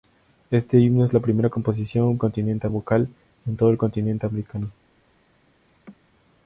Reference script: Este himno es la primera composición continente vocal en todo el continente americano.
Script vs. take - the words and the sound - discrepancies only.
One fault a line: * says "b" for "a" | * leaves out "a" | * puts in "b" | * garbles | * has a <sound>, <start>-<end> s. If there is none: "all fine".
* has a laugh, 5.7-6.0 s